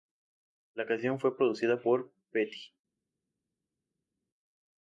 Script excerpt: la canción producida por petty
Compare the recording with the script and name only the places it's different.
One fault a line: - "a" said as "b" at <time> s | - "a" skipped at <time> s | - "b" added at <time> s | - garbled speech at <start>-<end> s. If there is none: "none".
- "fue" added at 1.2 s